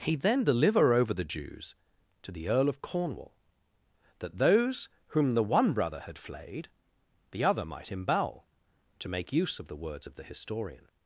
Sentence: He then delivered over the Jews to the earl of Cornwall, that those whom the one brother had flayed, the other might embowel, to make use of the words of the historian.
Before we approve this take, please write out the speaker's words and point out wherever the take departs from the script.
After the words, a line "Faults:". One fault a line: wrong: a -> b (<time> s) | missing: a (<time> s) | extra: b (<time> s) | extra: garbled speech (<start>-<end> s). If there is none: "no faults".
He then deliver over the Jews to the earl of Cornwall, that those whom the one brother had flayed, the other might embowel, to make use of the words of the historian.
Faults:
wrong: delivered -> deliver (0.4 s)